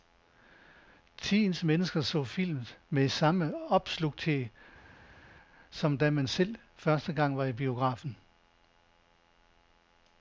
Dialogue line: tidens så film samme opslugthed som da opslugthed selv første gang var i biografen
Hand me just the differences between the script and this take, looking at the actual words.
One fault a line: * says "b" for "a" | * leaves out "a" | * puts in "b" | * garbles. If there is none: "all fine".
* puts in "mennesker"
* puts in "med"
* says "man" for "opslugthed"